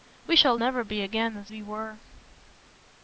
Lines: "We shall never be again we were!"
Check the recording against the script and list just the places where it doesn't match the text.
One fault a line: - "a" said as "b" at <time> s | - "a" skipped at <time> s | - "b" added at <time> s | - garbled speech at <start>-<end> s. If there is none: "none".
- "as" added at 1.4 s